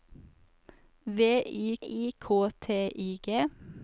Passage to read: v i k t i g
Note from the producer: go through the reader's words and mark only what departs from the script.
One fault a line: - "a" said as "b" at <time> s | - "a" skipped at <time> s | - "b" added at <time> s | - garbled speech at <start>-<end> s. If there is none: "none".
- "i" added at 1.8 s